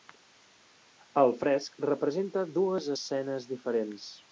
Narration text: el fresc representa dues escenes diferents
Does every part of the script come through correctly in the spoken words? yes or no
yes